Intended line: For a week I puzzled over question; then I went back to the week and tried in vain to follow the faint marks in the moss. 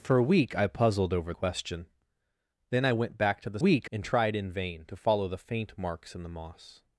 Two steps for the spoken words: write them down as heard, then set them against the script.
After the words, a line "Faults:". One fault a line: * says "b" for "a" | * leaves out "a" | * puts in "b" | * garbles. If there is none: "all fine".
For a week I puzzled over question; then I went back to the week and tried in vain to follow the faint marks in the moss.
Faults:
all fine